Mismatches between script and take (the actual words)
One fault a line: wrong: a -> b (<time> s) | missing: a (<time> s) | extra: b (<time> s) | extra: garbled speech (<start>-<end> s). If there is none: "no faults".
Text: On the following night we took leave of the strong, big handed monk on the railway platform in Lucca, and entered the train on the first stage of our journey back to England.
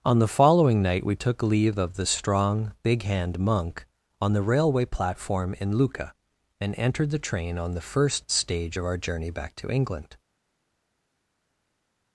wrong: handed -> hand (3.0 s)